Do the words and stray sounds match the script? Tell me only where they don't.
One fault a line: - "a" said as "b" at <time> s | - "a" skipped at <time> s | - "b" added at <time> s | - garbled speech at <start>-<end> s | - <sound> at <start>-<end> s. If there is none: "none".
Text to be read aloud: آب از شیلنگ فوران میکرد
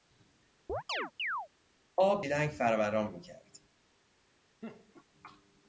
- chirp at 0.7-1.5 s
- "از" skipped at 2.2 s
- laugh at 4.6-5.0 s